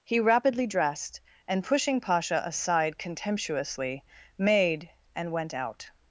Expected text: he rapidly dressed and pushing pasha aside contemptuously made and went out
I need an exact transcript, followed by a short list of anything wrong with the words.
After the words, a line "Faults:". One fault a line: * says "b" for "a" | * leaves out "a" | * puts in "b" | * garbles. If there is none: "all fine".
he rapidly dressed and pushing pasha aside contemptuously made and went out
Faults:
all fine